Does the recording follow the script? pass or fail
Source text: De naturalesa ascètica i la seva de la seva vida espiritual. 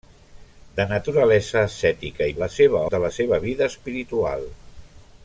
pass